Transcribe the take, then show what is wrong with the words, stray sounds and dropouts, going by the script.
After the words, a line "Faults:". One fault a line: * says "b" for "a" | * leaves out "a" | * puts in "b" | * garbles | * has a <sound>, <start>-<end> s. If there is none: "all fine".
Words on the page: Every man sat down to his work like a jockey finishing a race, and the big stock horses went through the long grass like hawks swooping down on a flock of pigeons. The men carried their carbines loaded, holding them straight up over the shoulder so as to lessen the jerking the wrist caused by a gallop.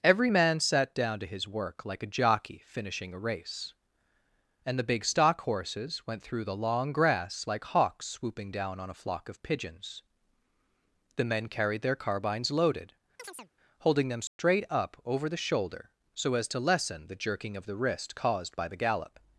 Every man sat down to his work like a jockey finishing a race, and the big stock horses went through the long grass like hawks swooping down on a flock of pigeons. The men carried their carbines loaded, holding them straight up over the shoulder so as to lessen the jerking of the wrist caused by the gallop.
Faults:
* has a chirp, 13.2-13.5 s
* has a dropout, 14.3-14.4 s
* puts in "of"
* says "the" for "a"